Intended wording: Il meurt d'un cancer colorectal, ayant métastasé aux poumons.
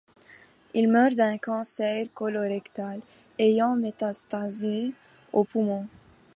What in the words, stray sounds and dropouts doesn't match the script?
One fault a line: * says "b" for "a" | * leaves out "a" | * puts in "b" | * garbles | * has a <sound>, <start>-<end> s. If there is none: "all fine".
all fine